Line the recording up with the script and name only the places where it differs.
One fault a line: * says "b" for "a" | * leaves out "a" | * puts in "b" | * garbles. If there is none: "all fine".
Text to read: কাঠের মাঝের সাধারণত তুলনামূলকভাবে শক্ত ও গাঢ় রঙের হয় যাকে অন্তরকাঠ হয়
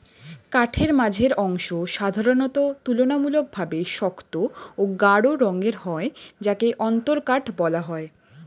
* puts in "অংশ"
* puts in "বলা"